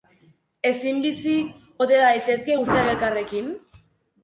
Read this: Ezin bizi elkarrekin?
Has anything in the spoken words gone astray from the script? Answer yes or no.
yes